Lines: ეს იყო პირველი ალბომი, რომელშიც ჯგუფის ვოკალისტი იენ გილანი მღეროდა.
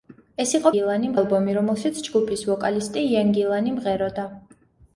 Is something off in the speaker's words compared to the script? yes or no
yes